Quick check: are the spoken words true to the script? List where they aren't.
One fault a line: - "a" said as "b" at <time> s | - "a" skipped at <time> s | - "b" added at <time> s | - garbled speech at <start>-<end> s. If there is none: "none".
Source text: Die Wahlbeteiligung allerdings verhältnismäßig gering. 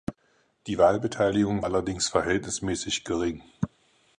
none